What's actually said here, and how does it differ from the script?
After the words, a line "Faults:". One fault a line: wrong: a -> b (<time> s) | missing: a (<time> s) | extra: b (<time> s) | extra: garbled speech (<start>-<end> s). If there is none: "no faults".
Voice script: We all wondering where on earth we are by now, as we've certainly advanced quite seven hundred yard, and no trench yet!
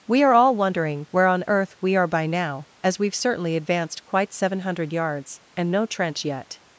We are all wondering where on earth we are by now, as we've certainly advanced quite seven hundred yards, and no trench yet!
Faults:
extra: are (0.2 s)
wrong: yard -> yards (4.9 s)